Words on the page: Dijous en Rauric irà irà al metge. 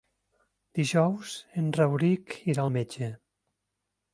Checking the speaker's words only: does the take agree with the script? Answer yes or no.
no